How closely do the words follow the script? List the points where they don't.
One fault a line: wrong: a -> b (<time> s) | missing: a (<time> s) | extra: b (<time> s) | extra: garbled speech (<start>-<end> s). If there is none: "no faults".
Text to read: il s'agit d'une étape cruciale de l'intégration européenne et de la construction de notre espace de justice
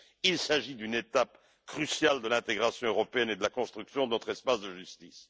no faults